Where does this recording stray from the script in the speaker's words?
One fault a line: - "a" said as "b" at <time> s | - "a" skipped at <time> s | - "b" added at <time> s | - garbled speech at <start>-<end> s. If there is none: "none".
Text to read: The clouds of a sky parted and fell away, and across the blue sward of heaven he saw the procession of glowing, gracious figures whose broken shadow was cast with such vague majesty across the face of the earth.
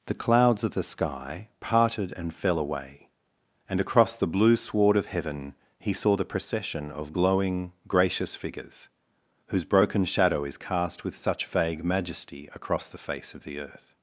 - "a" said as "the" at 0.7 s
- "was" said as "is" at 10.4 s